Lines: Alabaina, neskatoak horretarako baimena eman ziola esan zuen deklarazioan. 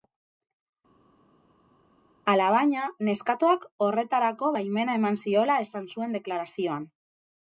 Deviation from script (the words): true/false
false